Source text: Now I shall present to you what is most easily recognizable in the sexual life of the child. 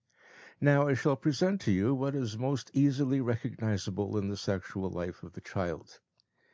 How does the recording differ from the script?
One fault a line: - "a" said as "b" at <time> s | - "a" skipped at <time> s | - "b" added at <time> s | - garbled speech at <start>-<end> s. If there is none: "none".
none